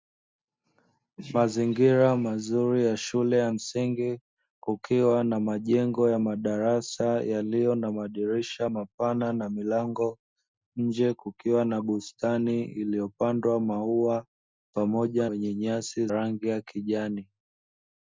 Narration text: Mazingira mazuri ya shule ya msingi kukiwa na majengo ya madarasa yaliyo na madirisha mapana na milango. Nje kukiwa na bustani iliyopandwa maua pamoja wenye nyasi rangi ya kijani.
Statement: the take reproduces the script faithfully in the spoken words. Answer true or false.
true